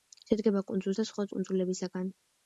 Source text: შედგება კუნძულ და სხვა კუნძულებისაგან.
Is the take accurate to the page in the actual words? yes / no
yes